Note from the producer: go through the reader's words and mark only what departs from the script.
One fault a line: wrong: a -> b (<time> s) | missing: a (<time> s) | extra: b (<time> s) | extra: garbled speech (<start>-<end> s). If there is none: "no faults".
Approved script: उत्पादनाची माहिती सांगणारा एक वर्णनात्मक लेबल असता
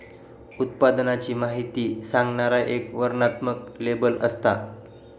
no faults